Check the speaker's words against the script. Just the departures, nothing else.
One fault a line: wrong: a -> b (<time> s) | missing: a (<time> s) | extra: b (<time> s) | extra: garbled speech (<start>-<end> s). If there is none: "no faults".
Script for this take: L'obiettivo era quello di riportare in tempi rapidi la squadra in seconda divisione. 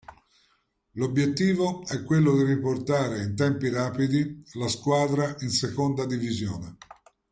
wrong: era -> è (1.9 s)